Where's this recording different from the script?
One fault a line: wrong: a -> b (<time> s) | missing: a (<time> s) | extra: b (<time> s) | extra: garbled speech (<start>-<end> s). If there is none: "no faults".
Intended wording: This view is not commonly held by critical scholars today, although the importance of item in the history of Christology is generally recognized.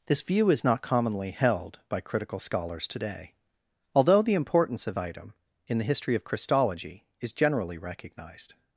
no faults